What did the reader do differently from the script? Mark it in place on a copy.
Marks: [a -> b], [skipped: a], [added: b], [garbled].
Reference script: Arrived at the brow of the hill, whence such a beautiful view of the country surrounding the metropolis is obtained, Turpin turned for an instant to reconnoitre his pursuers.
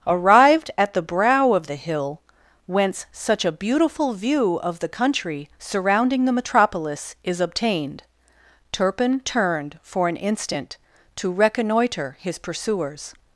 Arrived at the brow of the hill, whence such a beautiful view of the country surrounding the metropolis is obtained, Turpin turned for an instant to reconnoitre his pursuers.